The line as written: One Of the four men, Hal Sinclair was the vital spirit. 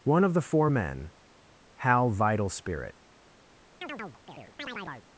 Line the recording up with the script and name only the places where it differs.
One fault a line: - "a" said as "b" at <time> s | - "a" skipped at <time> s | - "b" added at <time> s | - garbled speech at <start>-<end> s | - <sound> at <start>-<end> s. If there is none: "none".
- "Sinclair was the" skipped at 2.1 s
- chirp at 3.8-5.1 s